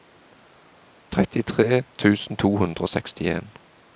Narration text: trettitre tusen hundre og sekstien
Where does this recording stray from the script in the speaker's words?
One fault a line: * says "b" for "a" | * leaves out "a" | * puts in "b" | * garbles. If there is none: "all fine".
* puts in "to"